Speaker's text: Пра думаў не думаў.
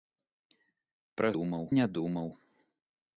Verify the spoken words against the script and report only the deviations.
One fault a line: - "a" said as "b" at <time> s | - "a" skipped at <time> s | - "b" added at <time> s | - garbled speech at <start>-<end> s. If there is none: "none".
none